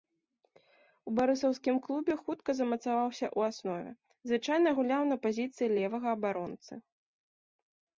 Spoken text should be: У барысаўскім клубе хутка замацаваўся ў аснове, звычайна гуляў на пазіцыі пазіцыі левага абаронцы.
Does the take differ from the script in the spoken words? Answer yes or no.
yes